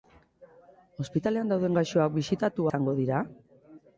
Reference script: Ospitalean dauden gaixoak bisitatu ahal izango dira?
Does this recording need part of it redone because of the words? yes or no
yes